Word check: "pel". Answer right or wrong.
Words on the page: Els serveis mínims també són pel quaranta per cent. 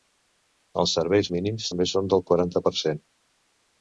wrong